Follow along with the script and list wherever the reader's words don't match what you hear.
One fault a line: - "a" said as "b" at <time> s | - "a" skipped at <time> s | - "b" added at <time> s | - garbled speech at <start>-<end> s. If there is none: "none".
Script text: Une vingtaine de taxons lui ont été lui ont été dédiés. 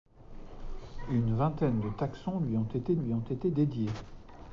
none